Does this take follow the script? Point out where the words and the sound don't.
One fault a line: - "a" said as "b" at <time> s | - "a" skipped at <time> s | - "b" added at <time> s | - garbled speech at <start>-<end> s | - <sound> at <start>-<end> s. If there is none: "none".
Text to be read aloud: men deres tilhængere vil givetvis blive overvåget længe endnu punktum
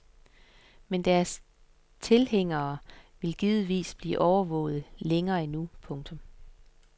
none